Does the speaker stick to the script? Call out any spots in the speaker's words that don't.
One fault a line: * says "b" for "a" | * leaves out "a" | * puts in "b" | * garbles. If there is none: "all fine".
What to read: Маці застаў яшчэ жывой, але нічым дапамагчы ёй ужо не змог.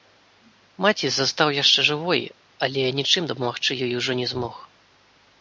all fine